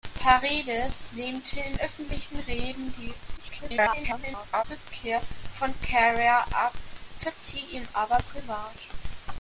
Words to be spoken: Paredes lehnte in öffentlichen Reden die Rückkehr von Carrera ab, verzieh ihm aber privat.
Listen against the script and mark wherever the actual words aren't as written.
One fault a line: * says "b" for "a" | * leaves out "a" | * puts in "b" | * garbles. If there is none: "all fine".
* garbles